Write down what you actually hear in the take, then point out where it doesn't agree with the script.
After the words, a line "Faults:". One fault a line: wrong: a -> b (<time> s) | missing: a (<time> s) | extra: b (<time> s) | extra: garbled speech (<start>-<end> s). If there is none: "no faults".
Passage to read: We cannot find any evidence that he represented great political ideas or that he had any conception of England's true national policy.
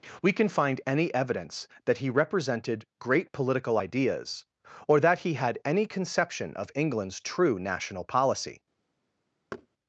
We can find any evidence that he represented great political ideas or that he had any conception of England's true national policy.
Faults:
wrong: cannot -> can (0.3 s)